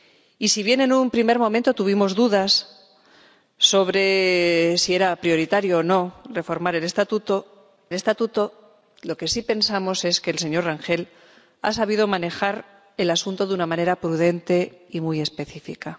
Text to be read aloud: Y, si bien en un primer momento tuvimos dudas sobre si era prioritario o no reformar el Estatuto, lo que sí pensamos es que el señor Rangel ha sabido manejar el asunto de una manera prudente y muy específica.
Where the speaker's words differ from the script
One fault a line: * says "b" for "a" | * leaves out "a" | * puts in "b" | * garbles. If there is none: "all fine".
* puts in "Estatuto"